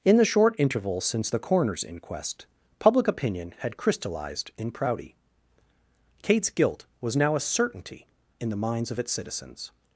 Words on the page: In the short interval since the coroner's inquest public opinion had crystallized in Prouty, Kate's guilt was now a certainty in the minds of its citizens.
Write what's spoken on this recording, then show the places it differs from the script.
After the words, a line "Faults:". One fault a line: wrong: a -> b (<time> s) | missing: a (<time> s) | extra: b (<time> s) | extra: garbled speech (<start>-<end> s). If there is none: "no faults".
In the short interval since the coroner's inquest public opinion had crystallized in Prouty, Kate's guilt was now a certainty in the minds of its citizens.
Faults:
no faults